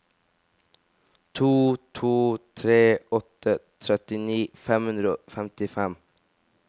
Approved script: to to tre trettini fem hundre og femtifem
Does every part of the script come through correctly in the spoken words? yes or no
no